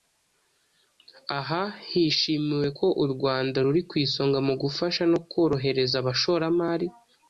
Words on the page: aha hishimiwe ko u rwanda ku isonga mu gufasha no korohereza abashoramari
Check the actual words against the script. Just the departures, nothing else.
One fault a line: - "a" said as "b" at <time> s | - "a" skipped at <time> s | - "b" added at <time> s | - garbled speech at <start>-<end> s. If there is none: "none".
- "ruri" added at 3.6 s